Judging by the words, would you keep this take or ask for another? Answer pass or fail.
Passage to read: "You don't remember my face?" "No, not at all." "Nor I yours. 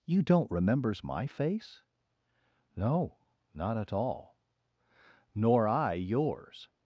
fail